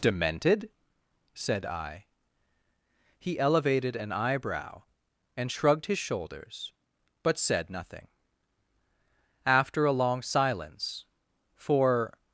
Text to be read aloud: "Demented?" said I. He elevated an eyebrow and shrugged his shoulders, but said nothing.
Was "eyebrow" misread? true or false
false